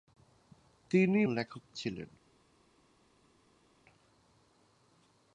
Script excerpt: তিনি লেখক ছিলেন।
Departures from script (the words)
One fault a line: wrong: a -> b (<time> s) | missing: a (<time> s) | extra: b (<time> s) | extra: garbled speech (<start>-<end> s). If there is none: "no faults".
no faults